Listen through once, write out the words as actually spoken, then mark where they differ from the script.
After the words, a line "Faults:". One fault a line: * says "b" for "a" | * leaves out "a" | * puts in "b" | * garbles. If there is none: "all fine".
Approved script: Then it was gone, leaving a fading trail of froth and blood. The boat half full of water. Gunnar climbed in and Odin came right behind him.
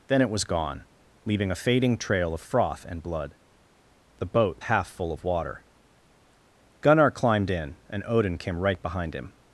Then it was gone, leaving a fading trail of froth and blood. The boat half full of water. Gunnar climbed in and Odin came right behind him.
Faults:
all fine